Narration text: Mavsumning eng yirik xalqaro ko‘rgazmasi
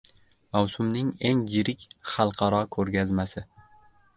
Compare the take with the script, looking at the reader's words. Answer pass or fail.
pass